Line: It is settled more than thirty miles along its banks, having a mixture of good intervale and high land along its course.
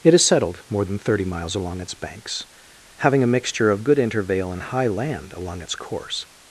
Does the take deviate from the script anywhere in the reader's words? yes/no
no